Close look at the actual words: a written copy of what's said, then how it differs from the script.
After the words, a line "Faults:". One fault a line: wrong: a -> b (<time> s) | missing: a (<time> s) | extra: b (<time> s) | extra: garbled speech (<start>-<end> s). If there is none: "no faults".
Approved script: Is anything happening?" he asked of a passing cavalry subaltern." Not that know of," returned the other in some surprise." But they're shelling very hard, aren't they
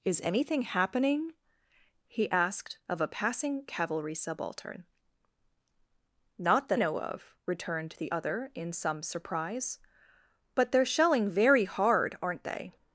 Is anything happening?" he asked of a passing cavalry subaltern." Not that know of," returned the other in some surprise." But they're shelling very hard, aren't they
Faults:
no faults